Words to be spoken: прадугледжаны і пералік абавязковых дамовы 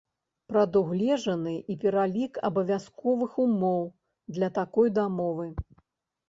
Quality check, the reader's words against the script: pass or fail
fail